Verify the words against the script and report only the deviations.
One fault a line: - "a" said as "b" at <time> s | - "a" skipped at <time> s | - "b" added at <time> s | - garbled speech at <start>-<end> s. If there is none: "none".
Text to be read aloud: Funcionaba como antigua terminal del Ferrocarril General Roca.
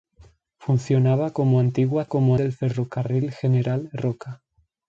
- "terminal" said as "como" at 2.0 s